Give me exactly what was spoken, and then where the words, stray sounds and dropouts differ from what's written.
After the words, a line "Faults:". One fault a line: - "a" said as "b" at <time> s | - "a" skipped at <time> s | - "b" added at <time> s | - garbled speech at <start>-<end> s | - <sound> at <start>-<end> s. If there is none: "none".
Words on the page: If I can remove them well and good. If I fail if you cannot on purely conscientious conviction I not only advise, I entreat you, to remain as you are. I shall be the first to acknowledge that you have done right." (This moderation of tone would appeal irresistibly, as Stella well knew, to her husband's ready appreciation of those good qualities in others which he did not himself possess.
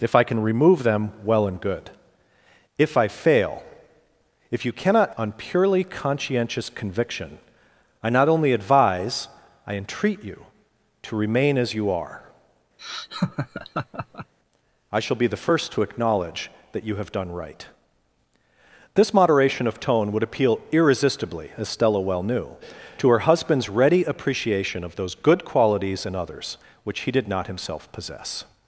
If I can remove them well and good. If I fail if you cannot on purely conscientious conviction I not only advise, I entreat you, to remain as you are. I shall be the first to acknowledge that you have done right." (This moderation of tone would appeal irresistibly, as Stella well knew, to her husband's ready appreciation of those good qualities in others which he did not himself possess.
Faults:
- laugh at 12.8-14.3 s